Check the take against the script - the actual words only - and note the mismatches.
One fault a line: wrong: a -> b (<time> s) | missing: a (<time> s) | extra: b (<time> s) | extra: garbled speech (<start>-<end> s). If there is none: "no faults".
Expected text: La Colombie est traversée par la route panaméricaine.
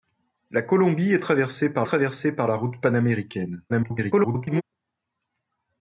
extra: traversée par (1.8 s)
extra: garbled speech (3.7-4.6 s)